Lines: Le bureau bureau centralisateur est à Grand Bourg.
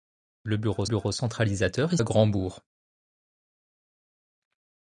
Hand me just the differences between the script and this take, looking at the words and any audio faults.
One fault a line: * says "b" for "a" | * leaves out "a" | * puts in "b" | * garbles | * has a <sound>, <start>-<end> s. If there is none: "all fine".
all fine